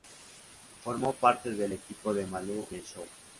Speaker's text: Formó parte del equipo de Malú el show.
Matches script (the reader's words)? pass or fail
pass